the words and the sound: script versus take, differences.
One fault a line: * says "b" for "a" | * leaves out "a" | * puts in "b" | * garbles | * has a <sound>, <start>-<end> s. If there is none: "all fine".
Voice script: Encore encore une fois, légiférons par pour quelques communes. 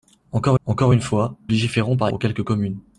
all fine